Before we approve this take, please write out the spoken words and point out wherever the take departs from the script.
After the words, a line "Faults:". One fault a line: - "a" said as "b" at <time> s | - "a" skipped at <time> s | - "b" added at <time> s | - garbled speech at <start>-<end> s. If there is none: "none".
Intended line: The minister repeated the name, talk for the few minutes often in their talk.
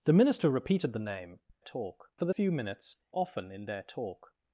The minister repeated the name, talk for the few minutes often in their talk.
Faults:
none